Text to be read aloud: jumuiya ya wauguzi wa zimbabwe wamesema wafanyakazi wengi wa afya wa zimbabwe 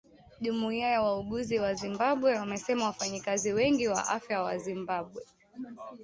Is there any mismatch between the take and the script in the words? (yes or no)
no